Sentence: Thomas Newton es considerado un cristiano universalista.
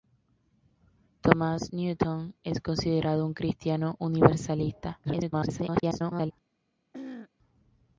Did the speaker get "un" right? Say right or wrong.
right